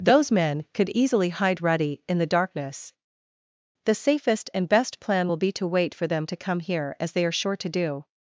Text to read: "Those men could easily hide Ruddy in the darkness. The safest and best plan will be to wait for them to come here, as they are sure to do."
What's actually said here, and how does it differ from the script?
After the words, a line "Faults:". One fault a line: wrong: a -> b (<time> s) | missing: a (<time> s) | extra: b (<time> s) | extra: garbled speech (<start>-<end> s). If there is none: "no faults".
"Those men could easily hide Ruddy in the darkness. The safest and best plan will be to wait for them to come here, as they are sure to do."
Faults:
no faults